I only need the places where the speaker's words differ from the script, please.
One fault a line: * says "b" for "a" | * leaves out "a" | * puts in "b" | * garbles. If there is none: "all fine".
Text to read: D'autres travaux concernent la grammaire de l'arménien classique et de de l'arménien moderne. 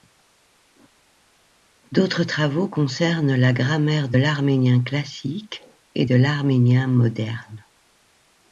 * leaves out "de"